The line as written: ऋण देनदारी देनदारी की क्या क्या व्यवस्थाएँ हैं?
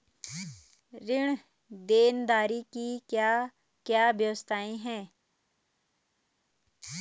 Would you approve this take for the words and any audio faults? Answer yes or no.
no